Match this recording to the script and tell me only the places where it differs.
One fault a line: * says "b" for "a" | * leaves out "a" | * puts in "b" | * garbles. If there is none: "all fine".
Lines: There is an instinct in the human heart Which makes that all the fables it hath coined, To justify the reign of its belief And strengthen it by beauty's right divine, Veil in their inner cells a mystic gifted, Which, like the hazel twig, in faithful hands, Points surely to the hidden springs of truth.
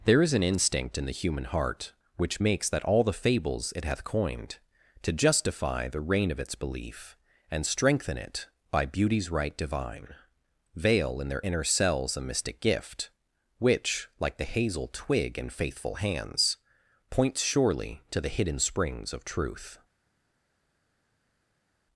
* says "gift" for "gifted"